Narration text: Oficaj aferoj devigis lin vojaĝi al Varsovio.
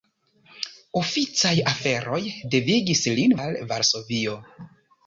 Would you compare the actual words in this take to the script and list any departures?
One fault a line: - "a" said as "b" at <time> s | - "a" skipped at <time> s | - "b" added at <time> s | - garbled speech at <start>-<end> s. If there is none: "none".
- "vojaĝi" skipped at 3.4 s